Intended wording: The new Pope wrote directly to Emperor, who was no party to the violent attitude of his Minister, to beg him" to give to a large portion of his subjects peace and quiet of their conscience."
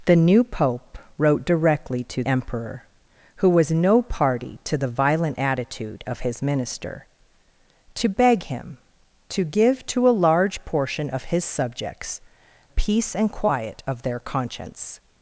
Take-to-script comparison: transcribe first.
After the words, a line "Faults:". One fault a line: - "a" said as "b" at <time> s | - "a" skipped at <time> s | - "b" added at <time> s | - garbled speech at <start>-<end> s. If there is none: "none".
The new Pope wrote directly to Emperor, who was no party to the violent attitude of his Minister, to beg him" to give to a large portion of his subjects peace and quiet of their conscience."
Faults:
none